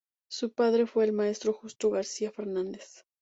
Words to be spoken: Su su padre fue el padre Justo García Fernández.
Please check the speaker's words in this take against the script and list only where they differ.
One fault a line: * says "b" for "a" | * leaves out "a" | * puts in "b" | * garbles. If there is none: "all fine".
* leaves out "su"
* says "maestro" for "padre"